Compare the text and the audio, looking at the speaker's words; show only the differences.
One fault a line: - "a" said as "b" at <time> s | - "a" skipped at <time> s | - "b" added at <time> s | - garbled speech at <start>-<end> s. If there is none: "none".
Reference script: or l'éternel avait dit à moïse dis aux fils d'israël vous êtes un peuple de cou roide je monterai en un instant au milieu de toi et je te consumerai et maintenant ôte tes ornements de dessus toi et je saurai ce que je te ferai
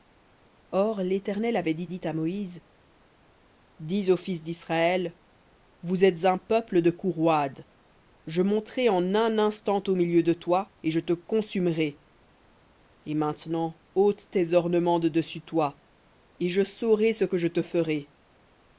- "dit" added at 1.9 s